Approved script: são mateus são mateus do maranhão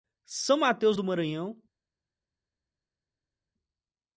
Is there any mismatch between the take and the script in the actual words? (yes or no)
yes